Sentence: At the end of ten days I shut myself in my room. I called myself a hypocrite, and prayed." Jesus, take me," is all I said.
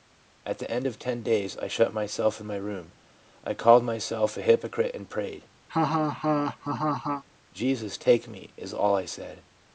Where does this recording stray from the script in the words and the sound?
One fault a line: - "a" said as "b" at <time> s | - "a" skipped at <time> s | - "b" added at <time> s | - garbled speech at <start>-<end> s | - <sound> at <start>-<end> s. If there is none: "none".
- laugh at 5.7-7.2 s